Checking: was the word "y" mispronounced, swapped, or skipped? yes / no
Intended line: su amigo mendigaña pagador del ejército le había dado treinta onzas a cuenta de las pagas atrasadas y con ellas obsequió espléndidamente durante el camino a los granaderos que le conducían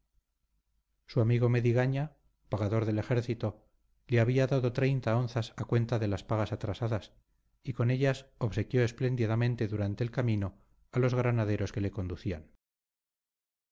no